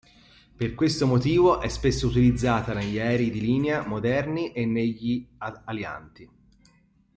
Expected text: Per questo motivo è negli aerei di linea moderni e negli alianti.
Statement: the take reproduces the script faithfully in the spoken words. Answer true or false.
false